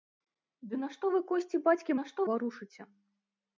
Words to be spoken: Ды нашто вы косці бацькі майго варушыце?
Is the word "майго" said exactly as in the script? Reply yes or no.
no